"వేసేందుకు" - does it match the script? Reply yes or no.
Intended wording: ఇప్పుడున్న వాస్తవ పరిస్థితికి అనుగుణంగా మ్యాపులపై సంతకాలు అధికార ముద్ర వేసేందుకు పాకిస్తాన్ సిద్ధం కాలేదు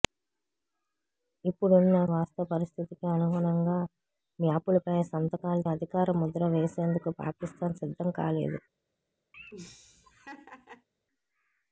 yes